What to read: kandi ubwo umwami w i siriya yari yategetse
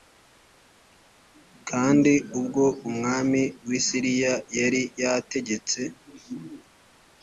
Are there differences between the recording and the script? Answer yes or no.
no